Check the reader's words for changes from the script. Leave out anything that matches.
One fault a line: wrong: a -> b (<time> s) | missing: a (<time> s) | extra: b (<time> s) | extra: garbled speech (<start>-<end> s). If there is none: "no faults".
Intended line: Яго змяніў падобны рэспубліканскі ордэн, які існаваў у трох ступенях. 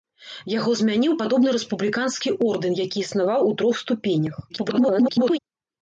extra: garbled speech (4.5-5.4 s)